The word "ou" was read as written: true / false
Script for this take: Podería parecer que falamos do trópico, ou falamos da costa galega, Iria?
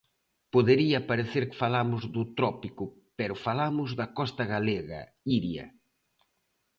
false